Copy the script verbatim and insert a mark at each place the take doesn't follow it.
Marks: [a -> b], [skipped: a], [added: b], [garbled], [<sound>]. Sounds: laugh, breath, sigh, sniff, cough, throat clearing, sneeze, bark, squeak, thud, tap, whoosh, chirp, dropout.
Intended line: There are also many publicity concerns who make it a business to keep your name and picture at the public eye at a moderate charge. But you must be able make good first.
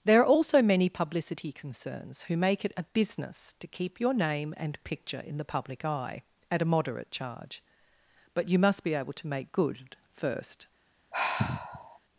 There are also many publicity concerns who make it a business to keep your name and picture [at -> in] the public eye at a moderate charge. But you must be able [added: to] make good first. [sigh]